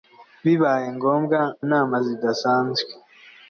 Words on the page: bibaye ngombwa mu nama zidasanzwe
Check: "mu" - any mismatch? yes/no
yes